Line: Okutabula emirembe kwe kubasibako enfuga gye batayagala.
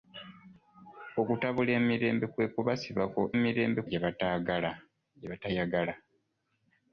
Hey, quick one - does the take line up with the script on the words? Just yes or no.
no